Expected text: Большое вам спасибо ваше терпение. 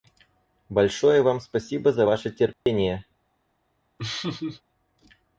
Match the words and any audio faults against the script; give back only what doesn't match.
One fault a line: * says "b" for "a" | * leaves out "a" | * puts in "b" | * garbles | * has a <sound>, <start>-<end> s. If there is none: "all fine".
* puts in "за"
* has a dropout, 2.5-2.7 s
* has a laugh, 4.0-4.6 s